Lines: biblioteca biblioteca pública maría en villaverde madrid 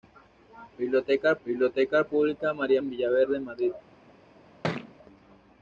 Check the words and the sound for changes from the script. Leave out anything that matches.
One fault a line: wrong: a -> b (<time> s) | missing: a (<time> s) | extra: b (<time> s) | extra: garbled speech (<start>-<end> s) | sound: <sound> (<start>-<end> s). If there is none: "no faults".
sound: thud (4.6-4.9 s)